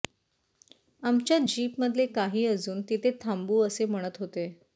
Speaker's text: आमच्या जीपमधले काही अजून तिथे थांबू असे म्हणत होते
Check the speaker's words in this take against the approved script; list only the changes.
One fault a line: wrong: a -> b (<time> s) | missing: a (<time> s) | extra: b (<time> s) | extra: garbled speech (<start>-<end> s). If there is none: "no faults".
no faults